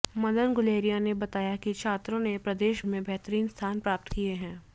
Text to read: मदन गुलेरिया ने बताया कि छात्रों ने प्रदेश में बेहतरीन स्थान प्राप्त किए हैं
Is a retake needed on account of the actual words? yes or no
no